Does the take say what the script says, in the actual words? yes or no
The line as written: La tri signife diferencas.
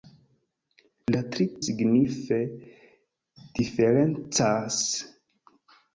yes